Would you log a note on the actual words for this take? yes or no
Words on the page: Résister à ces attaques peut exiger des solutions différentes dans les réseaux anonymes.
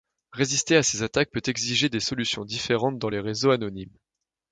no